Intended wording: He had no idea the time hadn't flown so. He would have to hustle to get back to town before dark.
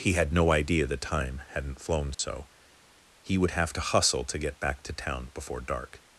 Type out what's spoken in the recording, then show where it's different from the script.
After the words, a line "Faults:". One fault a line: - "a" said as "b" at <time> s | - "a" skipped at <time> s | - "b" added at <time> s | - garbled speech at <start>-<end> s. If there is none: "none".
He had no idea the time hadn't flown so. He would have to hustle to get back to town before dark.
Faults:
none